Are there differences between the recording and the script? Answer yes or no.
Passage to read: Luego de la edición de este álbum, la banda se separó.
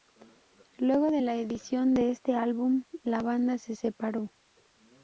no